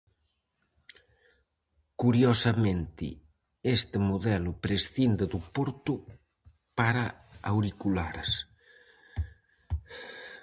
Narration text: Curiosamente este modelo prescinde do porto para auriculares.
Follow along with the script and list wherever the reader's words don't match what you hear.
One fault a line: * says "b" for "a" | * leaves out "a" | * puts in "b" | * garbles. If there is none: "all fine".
all fine